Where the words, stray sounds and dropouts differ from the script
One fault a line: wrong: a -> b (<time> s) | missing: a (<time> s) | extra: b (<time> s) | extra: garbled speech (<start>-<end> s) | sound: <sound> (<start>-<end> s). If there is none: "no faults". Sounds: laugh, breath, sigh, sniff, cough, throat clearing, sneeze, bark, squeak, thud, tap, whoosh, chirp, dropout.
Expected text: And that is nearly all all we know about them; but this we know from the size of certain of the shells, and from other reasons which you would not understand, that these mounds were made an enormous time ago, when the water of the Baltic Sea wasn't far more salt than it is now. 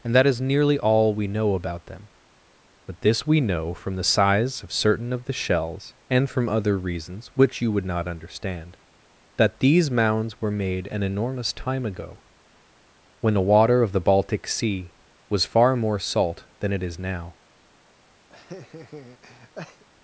missing: all (1.1 s)
wrong: wasn't -> was (15.3 s)
sound: laugh (18.3-19.8 s)